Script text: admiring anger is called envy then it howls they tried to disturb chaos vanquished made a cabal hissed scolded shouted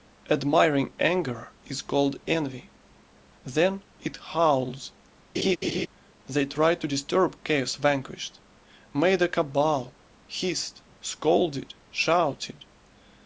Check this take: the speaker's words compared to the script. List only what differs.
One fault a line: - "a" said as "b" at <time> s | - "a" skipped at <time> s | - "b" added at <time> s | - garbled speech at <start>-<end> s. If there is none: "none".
none